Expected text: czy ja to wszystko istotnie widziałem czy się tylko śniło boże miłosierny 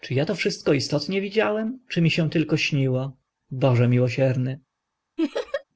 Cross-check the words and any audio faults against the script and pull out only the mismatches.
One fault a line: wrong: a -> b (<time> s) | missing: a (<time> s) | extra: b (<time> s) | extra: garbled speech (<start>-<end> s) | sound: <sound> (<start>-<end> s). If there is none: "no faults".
extra: mi (2.0 s)
sound: laugh (5.2-5.6 s)